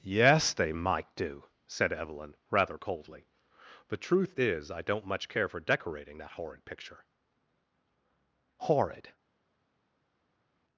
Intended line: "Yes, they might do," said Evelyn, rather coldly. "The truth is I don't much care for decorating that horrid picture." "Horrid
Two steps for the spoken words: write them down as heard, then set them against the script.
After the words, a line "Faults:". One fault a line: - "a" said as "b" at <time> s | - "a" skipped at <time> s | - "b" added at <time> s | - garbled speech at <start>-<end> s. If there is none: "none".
"Yes, they might do," said Evelyn, rather coldly. "The truth is I don't much care for decorating that horrid picture." "Horrid
Faults:
none